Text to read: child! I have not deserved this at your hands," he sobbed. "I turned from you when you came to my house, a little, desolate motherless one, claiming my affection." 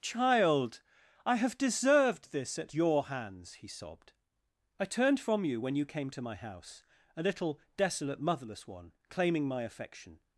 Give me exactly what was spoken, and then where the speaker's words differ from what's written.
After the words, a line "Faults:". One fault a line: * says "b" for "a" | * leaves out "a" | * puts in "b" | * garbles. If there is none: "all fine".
child! I have deserved this at your hands," he sobbed. "I turned from you when you came to my house, a little, desolate motherless one, claiming my affection."
Faults:
* leaves out "not"